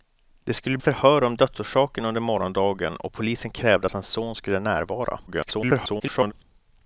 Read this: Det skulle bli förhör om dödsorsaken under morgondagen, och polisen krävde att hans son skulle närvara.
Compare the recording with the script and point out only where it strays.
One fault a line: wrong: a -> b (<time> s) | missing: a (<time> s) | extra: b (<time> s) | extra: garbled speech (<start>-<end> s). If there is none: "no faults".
missing: bli (0.8 s)
extra: garbled speech (5.3-6.3 s)